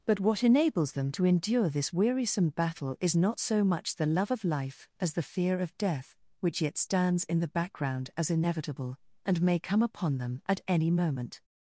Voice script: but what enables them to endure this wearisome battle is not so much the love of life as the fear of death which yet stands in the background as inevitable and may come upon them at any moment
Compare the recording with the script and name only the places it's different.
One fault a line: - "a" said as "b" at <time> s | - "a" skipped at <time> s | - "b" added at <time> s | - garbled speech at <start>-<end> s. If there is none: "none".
none